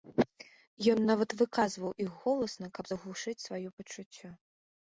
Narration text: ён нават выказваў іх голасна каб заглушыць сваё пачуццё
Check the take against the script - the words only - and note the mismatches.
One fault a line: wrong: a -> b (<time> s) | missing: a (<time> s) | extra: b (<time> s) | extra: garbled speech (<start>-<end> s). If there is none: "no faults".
no faults